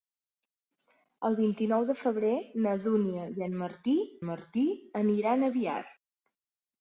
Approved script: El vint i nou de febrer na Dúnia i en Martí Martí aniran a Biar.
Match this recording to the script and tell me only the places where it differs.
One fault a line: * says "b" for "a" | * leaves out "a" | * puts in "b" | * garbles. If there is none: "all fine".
all fine